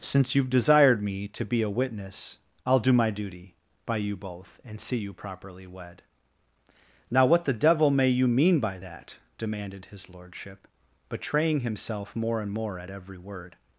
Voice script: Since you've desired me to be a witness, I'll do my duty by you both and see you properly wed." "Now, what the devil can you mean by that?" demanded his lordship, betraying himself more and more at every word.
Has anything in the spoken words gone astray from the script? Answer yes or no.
yes